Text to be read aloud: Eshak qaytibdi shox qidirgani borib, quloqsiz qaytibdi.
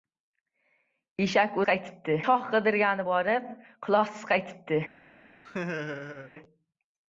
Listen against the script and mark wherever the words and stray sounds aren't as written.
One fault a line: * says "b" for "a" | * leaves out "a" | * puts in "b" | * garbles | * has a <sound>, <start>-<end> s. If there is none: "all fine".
* has a laugh, 5.4-6.3 s